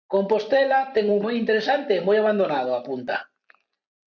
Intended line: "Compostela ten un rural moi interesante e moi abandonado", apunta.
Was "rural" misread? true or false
true